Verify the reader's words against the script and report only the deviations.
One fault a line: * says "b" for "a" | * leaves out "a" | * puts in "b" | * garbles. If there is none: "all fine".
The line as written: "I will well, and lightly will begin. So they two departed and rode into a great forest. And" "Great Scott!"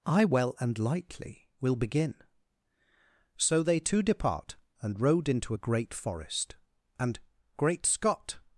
* leaves out "will"
* says "depart" for "departed"